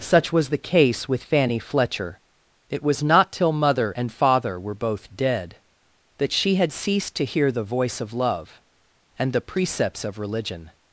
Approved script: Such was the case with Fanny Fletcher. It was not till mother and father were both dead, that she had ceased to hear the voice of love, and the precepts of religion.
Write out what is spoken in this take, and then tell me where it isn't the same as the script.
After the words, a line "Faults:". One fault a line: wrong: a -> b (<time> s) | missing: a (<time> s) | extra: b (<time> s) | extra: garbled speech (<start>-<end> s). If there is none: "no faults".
Such was the case with Fanny Fletcher. It was not till mother and father were both dead, that she had ceased to hear the voice of love, and the precepts of religion.
Faults:
no faults